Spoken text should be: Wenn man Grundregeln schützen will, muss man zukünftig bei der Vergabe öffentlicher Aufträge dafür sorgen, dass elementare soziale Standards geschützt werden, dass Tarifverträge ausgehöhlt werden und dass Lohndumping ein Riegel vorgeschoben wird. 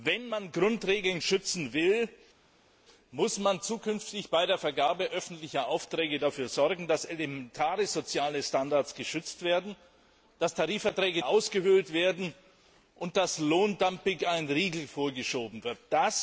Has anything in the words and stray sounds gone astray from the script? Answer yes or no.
no